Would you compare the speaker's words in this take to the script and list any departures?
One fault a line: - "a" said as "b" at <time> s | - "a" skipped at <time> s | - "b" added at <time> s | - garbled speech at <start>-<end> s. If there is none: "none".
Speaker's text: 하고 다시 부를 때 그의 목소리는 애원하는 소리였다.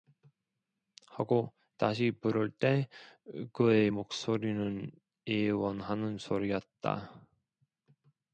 none